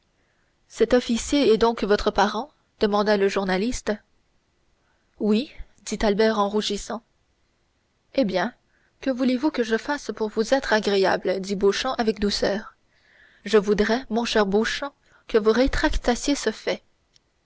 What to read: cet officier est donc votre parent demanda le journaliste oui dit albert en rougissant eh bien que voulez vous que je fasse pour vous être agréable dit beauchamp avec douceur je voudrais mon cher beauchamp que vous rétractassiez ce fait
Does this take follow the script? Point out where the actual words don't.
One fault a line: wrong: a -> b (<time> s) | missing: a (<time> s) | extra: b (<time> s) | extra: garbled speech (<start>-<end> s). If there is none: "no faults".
no faults